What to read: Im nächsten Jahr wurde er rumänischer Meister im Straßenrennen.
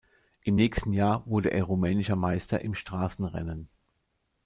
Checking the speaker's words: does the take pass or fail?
pass